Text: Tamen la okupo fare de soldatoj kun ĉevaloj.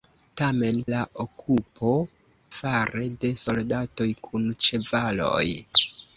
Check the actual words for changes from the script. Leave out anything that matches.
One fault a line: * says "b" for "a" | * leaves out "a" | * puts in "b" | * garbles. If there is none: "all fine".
all fine